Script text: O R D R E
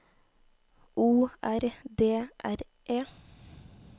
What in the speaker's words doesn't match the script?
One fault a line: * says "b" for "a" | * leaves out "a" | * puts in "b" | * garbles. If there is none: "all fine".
all fine